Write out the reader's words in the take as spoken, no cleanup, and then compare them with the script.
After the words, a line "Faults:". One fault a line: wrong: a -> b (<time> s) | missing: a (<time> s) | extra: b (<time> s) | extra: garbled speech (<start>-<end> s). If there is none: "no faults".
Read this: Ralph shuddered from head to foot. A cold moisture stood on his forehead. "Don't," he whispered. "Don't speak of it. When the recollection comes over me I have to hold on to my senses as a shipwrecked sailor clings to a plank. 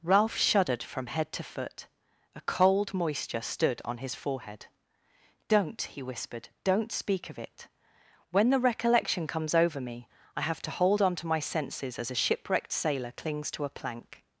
Ralph shuddered from head to foot. A cold moisture stood on his forehead. "Don't," he whispered. "Don't speak of it. When the recollection comes over me I have to hold on to my senses as a shipwrecked sailor clings to a plank.
Faults:
no faults